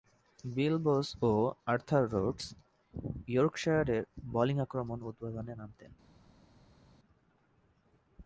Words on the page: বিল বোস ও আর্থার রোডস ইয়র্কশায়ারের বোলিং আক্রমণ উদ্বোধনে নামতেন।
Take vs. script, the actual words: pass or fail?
pass